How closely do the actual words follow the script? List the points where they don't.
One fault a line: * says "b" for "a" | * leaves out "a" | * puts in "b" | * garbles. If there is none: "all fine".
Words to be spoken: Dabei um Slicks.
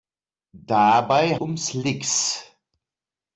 all fine